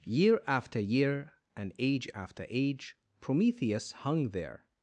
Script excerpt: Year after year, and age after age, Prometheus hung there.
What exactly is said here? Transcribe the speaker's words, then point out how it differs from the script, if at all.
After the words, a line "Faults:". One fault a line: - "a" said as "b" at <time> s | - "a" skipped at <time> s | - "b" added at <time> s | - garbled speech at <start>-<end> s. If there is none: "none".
Year after year, and age after age, Prometheus hung there.
Faults:
none